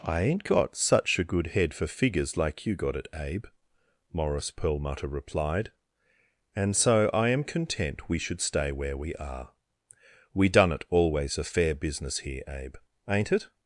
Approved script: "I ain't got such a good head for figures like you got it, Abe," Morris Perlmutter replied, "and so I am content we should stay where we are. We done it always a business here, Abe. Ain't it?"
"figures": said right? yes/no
yes